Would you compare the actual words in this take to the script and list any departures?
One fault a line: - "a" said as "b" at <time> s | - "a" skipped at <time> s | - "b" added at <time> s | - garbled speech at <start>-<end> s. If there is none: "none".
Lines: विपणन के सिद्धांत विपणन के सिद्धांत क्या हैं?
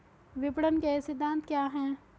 - "विपणन के सिद्धांत" skipped at 1.4 s